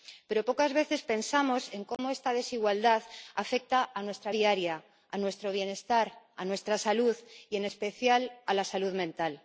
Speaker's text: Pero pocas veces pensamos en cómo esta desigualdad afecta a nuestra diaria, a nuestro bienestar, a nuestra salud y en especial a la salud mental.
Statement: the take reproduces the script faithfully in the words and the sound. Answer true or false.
false